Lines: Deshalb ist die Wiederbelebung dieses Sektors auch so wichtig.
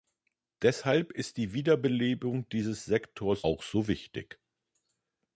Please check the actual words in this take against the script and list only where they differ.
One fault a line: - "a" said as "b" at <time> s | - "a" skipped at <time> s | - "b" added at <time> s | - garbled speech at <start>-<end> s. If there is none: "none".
none